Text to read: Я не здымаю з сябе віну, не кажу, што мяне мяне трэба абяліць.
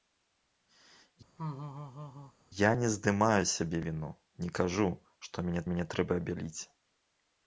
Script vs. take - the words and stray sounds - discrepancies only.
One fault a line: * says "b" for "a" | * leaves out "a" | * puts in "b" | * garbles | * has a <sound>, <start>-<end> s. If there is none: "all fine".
* has a laugh, 1.4-2.3 s